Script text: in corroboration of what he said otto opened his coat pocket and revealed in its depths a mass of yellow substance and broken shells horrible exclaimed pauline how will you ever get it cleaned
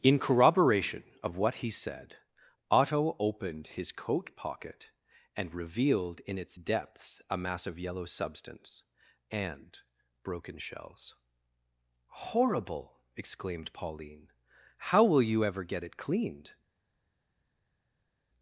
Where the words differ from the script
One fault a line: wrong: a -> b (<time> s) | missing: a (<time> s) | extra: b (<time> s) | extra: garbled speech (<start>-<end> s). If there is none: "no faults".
no faults